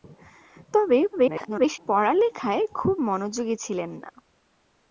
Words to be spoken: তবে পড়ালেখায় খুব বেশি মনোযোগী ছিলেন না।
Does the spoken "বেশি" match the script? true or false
false